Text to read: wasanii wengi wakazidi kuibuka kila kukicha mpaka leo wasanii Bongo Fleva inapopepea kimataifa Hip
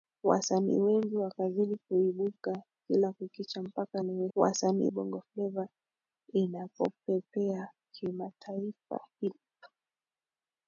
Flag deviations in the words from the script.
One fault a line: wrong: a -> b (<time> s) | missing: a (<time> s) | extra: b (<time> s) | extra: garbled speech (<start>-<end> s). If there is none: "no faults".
no faults